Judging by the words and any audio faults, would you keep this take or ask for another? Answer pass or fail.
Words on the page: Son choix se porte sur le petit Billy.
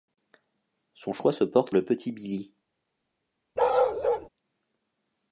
fail